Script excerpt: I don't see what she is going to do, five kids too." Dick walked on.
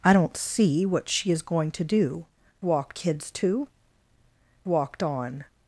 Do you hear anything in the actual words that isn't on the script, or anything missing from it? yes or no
yes